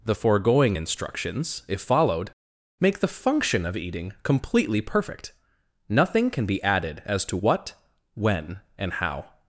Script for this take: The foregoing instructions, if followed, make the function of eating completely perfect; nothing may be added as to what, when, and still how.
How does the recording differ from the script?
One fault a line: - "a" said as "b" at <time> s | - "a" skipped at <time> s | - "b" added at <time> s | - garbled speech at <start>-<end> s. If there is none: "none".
- "may" said as "can" at 6.3 s
- "still" skipped at 8.9 s